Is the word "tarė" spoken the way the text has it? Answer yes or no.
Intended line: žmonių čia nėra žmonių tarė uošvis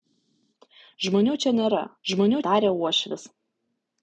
yes